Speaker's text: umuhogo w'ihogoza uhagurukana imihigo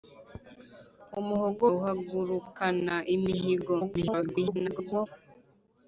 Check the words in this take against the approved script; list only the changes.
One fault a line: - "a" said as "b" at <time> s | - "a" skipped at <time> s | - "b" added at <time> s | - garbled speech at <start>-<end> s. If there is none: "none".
- "w'ihogoza" skipped at 1.6 s
- garbled speech at 3.8-5.1 s